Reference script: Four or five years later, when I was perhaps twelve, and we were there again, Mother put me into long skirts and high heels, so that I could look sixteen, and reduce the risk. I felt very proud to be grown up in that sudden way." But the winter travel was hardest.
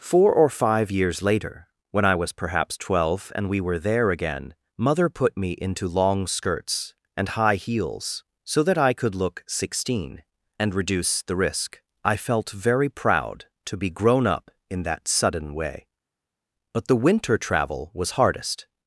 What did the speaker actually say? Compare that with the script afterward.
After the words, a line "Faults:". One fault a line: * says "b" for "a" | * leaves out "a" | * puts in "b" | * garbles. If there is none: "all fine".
Four or five years later, when I was perhaps twelve, and we were there again, Mother put me into long skirts and high heels, so that I could look sixteen, and reduce the risk. I felt very proud to be grown up in that sudden way." But the winter travel was hardest.
Faults:
all fine